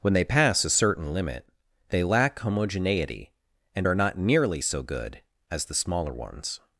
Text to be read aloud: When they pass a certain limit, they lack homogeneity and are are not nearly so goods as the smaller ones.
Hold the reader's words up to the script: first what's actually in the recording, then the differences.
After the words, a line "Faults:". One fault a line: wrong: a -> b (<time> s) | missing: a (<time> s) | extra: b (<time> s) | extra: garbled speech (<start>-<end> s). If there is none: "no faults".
When they pass a certain limit, they lack homogeneity and are not nearly so good as the smaller ones.
Faults:
missing: are (3.9 s)
wrong: goods -> good (4.8 s)